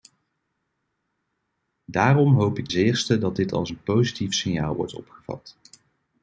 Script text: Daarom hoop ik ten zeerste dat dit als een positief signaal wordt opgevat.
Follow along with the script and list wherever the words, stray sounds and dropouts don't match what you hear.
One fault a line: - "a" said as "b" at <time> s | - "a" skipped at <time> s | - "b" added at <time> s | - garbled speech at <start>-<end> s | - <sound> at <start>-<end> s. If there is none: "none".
- "ten" skipped at 2.7 s